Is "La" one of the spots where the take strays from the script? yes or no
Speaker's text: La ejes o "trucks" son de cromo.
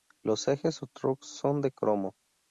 yes